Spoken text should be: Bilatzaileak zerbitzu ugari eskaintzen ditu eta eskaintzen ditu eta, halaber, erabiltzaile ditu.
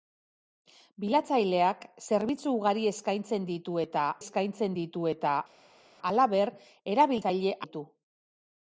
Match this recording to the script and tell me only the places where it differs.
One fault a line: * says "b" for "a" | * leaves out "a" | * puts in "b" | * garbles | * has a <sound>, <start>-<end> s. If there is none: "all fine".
all fine